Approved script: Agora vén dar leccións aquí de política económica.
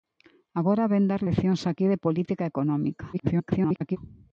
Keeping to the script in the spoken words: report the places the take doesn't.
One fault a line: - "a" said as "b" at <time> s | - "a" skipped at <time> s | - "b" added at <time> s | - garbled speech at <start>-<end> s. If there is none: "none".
- garbled speech at 3.1-4.0 s